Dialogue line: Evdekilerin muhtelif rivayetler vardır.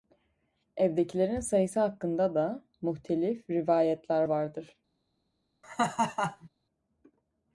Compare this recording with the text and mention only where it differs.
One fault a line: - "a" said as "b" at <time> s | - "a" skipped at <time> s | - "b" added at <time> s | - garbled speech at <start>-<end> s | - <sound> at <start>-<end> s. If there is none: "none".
- "sayısı hakkında da" added at 1.4 s
- laugh at 5.6-6.5 s